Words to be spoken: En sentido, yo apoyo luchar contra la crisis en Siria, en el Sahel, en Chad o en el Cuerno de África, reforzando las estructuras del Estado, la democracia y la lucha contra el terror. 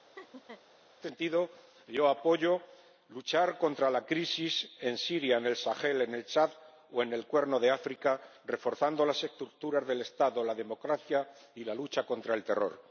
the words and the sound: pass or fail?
fail